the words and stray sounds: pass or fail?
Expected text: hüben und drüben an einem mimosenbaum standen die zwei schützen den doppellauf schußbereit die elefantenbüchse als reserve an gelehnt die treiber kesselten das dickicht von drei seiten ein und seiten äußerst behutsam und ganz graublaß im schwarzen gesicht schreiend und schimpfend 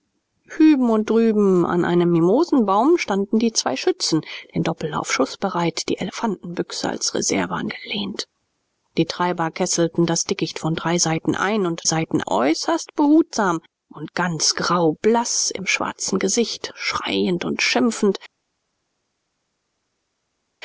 pass